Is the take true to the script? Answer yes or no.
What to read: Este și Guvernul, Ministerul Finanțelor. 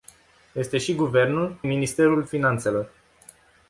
yes